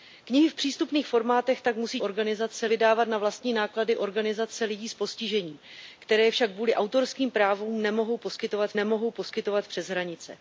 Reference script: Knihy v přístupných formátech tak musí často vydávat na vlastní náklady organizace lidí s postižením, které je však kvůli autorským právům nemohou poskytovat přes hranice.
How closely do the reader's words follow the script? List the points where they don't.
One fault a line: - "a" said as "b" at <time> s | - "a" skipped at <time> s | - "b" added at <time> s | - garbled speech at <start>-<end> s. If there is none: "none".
- "často" said as "organizace" at 2.0 s
- "nemohou poskytovat" added at 8.8 s